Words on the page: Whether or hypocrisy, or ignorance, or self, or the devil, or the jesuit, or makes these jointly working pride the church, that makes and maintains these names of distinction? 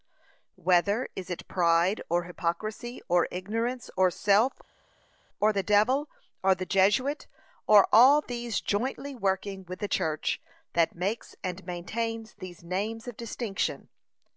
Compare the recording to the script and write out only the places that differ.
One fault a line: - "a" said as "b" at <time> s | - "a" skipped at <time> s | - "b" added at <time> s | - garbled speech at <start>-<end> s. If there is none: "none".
- "is it pride" added at 1.1 s
- "makes" said as "all" at 7.9 s
- "pride" said as "with" at 9.7 s